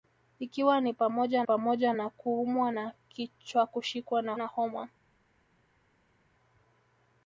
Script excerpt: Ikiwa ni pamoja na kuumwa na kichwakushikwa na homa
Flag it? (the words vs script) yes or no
yes